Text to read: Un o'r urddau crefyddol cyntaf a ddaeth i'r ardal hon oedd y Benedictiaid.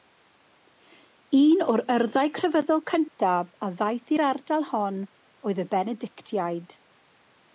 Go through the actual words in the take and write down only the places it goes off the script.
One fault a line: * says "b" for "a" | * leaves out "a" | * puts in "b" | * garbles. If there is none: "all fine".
all fine